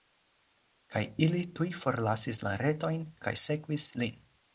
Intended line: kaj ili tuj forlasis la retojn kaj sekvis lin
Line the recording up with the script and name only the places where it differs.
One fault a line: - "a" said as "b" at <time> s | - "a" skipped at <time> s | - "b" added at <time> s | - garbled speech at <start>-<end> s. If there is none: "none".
none